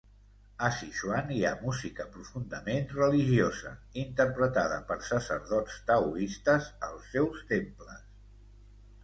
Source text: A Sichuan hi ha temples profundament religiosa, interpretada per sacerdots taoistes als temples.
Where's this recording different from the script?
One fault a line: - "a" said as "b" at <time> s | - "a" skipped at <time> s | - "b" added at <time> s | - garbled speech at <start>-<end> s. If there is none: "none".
- "temples" said as "música" at 1.6 s
- "seus" added at 7.1 s